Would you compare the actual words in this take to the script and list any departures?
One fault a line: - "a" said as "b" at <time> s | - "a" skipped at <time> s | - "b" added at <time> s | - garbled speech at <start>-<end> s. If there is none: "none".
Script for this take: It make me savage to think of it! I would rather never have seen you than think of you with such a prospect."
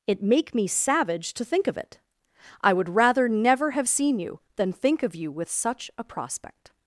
none